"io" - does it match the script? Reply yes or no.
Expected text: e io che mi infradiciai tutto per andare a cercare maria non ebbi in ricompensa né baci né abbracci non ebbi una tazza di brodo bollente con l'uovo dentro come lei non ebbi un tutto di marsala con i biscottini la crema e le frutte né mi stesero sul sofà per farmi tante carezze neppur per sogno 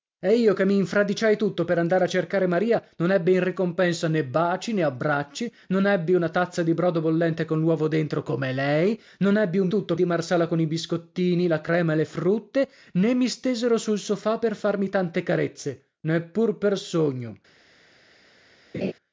yes